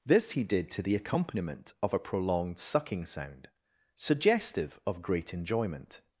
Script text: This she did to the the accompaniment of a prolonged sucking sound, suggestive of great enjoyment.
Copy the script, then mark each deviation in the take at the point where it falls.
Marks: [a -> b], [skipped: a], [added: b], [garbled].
This [she -> he] did to the [skipped: the] accompaniment of a prolonged sucking sound, suggestive of great enjoyment.